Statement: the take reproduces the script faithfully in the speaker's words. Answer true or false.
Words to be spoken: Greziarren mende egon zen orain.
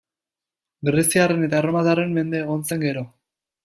false